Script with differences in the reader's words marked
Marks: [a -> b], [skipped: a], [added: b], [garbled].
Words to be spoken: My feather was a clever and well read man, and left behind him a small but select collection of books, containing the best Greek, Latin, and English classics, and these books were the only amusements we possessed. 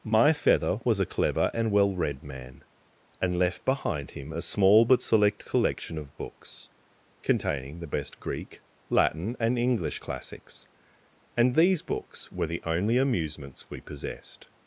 My feather was a clever and well read man, and left behind him a small but select collection of books, containing the best Greek, Latin, and English classics, and these books were the only amusements we possessed.